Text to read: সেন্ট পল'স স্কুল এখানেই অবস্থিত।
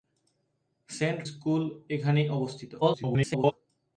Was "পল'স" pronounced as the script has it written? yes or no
no